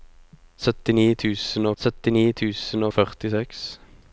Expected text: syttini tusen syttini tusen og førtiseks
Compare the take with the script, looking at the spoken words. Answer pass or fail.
pass